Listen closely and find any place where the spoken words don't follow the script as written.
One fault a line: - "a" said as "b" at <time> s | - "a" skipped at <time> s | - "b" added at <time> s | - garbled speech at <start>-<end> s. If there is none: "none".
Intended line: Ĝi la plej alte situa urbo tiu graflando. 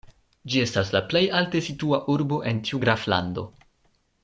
- "estas" added at 0.7 s
- "en" added at 2.5 s